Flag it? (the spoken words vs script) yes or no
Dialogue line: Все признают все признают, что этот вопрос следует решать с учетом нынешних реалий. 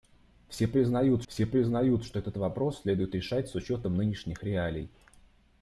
no